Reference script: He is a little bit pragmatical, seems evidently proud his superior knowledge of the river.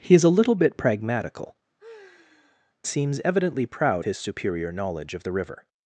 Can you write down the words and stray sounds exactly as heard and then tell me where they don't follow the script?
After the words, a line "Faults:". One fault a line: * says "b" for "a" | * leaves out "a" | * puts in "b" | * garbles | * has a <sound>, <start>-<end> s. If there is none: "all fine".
He is a little bit pragmatical, seems evidently proud his superior knowledge of the river.
Faults:
* has a sigh, 1.8-2.8 s